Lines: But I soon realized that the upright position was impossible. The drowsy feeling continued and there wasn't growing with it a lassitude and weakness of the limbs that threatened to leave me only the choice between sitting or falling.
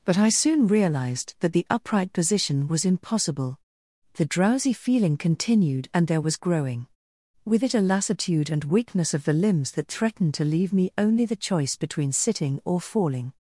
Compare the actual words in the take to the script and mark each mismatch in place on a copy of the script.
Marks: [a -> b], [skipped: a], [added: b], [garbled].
But I soon realized that the upright position was impossible. The drowsy feeling continued and there [wasn't -> was] growing with it a lassitude and weakness of the limbs that threatened to leave me only the choice between sitting or falling.